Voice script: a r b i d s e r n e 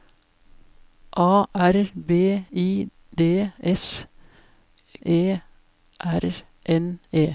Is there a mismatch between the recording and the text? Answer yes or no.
no